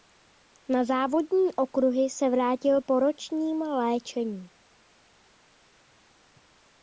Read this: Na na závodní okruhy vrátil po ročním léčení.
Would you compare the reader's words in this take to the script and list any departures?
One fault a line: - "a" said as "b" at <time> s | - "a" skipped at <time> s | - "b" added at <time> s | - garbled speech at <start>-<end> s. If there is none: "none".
- "na" skipped at 0.8 s
- "se" added at 2.1 s